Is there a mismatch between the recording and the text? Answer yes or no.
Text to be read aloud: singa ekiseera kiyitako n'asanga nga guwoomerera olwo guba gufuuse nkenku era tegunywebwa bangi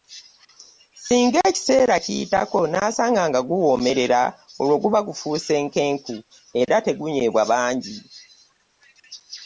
no